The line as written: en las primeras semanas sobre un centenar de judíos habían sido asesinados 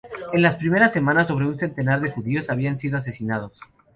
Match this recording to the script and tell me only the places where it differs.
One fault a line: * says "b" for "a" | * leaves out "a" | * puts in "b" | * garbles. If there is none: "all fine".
all fine